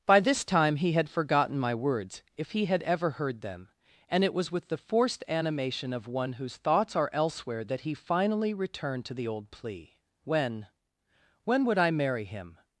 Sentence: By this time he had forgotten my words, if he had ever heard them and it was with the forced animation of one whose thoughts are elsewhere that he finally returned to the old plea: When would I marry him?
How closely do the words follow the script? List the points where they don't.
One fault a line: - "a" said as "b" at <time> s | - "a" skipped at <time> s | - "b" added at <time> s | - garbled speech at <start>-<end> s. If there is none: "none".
- "When" added at 11.4 s